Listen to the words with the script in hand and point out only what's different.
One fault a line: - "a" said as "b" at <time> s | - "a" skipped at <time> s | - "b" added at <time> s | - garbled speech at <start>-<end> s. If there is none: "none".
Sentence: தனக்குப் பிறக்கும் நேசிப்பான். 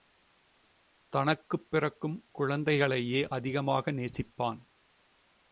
- "குழந்தைகளையே அதிகமாக" added at 2.3 s